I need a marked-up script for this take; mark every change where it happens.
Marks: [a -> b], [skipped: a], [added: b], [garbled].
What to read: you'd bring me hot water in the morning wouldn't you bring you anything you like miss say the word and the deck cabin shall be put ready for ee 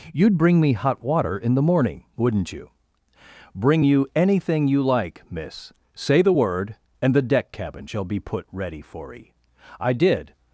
you'd bring me hot water in the morning wouldn't you bring you anything you like miss say the word and the deck cabin shall be put ready for ee [added: i did]